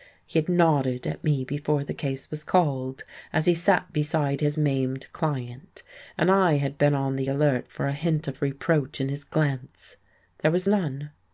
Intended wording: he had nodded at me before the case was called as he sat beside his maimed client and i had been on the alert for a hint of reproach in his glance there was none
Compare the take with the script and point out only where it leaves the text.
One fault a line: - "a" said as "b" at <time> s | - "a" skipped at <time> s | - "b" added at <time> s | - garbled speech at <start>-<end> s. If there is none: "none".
none